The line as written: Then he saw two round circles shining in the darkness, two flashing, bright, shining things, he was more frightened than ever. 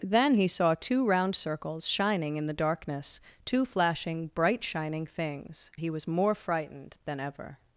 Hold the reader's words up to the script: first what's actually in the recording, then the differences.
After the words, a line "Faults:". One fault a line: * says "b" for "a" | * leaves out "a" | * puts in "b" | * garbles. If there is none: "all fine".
Then he saw two round circles shining in the darkness, two flashing, bright, shining things, he was more frightened than ever.
Faults:
all fine